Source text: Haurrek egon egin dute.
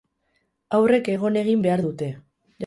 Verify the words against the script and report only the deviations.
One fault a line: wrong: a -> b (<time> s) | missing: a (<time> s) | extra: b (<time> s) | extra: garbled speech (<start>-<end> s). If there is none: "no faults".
extra: behar (1.7 s)